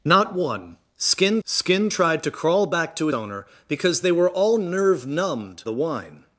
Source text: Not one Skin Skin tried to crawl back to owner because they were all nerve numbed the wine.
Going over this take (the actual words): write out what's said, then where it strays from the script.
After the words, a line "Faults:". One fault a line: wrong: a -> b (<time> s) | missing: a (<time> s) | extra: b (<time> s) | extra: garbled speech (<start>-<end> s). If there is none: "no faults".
Not one Skin Skin tried to crawl back to owner because they were all nerve numbed the wine.
Faults:
no faults